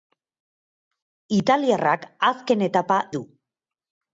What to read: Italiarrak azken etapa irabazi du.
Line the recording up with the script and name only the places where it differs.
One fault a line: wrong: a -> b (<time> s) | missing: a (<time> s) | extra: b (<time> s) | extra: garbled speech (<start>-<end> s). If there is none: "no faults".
missing: irabazi (3.0 s)